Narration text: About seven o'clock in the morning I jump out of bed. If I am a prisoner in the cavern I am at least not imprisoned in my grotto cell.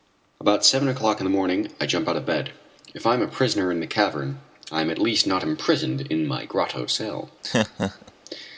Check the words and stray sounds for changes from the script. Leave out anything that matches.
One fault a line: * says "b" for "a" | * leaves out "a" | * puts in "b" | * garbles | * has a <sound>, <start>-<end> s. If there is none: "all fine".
* has a laugh, 7.4-8.1 s